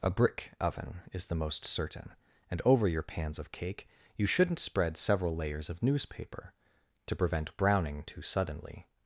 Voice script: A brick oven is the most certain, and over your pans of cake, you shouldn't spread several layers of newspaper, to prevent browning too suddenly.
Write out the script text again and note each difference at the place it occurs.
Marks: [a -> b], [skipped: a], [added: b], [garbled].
A brick oven is the most certain, and over your pans of cake, you shouldn't spread several layers of newspaper, to prevent browning too suddenly.